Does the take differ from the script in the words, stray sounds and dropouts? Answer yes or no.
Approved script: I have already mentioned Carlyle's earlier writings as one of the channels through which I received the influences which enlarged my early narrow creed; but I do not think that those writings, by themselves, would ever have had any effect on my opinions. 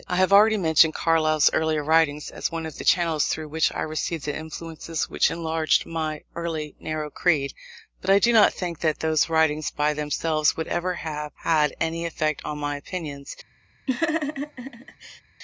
yes